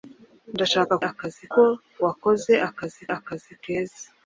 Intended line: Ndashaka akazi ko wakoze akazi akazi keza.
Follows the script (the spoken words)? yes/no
yes